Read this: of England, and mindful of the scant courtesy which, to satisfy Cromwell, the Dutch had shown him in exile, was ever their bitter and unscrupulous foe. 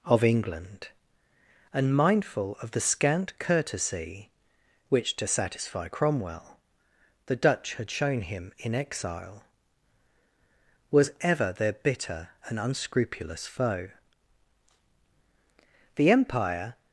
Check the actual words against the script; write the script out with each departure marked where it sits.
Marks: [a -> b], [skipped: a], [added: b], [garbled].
of England, and mindful of the scant courtesy which, to satisfy Cromwell, the Dutch had shown him in exile, was ever their bitter and unscrupulous foe. [added: The empire]